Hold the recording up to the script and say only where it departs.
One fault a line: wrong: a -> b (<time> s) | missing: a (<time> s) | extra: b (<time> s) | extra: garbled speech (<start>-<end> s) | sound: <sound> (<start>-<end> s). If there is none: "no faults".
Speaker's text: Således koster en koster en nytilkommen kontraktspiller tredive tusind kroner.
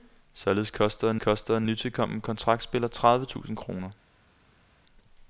no faults